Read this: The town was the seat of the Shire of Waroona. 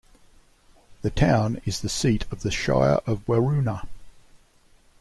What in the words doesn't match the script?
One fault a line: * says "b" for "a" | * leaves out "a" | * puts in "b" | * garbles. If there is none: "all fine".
* says "is" for "was"